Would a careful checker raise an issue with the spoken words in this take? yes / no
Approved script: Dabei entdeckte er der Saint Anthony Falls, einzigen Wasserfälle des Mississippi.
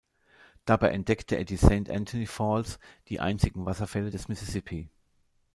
yes